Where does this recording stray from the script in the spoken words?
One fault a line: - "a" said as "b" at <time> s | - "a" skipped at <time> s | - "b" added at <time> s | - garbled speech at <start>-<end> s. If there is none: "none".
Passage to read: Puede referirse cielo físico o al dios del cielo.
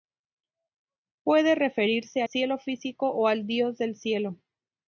none